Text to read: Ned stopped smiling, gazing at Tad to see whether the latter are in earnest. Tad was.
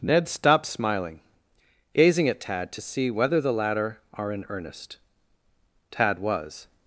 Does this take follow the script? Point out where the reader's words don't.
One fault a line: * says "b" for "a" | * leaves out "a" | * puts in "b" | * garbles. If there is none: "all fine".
all fine